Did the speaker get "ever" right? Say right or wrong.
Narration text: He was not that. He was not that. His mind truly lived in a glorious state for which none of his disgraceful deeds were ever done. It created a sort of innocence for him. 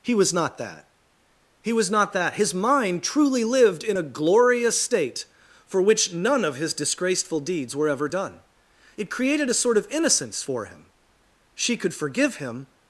right